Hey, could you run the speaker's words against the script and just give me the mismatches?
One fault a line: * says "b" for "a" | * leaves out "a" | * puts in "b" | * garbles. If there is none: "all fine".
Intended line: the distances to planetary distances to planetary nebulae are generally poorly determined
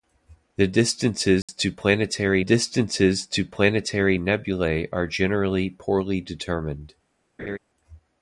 all fine